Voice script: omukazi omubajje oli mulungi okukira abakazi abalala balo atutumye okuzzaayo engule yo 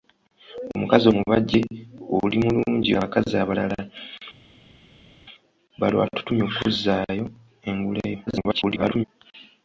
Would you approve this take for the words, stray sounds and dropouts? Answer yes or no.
no